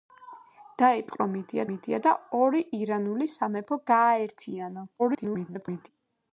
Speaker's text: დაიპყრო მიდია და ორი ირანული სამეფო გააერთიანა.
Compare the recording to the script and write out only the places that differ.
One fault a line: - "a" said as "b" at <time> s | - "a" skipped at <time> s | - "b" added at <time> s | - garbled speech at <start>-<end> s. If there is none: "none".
- "მიდია" added at 1.7 s
- garbled speech at 5.0-5.9 s